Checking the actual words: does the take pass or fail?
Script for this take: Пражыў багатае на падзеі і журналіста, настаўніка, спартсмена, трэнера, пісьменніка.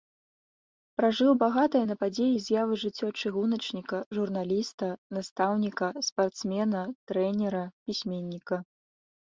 fail